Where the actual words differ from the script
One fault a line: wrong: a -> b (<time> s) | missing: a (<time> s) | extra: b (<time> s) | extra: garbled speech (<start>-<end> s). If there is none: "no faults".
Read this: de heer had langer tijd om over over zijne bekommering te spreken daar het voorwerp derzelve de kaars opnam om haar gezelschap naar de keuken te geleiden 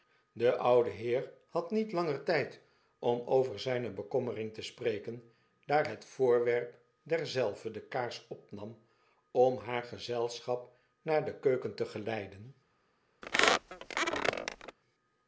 extra: oude (0.6 s)
extra: niet (1.7 s)
missing: over (3.6 s)